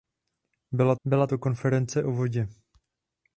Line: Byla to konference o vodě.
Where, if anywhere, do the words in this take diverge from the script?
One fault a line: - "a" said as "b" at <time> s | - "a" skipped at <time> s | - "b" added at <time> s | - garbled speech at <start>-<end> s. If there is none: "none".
- "byla" added at 1.0 s